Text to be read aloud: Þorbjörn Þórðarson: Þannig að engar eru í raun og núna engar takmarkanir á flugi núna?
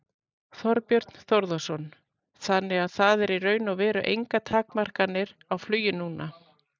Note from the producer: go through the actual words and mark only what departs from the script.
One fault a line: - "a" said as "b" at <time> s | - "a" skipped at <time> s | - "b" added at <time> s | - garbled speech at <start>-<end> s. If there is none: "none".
- "engar" said as "það" at 3.0 s
- "núna" said as "veru" at 3.8 s